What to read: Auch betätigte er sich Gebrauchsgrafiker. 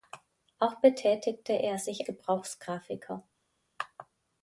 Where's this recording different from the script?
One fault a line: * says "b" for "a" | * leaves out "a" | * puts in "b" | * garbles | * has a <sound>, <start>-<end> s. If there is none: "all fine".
all fine